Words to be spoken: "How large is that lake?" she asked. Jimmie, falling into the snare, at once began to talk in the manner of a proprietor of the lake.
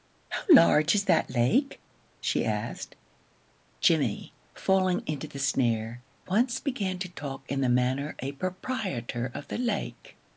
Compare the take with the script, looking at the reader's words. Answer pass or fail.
fail